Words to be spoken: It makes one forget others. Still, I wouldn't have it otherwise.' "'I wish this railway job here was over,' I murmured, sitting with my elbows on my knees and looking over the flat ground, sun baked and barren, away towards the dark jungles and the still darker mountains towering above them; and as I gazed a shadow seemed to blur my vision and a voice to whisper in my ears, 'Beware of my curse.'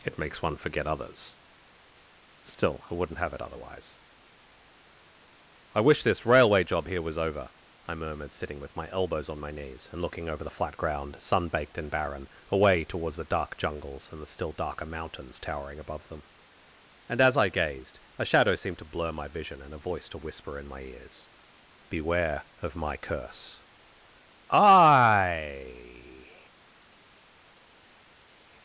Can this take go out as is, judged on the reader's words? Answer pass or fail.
fail